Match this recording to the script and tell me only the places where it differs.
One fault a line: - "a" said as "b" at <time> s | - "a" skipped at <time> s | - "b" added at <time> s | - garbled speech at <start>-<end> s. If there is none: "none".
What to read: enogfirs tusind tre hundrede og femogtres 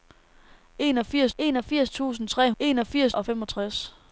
- "enogfirs" added at 1.4 s
- "hundrede" said as "enogfirs" at 2.6 s